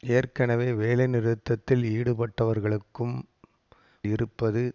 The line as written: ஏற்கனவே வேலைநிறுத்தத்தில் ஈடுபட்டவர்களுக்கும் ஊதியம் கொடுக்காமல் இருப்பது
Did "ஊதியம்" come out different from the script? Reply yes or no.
yes